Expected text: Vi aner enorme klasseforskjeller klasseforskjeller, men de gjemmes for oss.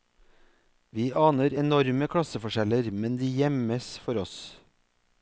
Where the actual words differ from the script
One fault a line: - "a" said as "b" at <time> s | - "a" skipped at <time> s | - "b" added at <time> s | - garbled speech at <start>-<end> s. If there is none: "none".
- "klasseforskjeller" skipped at 2.9 s